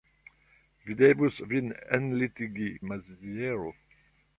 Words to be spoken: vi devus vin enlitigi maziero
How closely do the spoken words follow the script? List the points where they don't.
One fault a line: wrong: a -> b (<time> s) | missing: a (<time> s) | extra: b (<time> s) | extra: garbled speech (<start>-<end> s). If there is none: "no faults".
no faults